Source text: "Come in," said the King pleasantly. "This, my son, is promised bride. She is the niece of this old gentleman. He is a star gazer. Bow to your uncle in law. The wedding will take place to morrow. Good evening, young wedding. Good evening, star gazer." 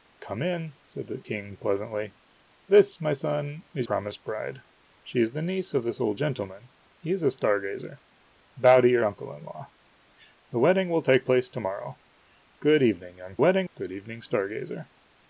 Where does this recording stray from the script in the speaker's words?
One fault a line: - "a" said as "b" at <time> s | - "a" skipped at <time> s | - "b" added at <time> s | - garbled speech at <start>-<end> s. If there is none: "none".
none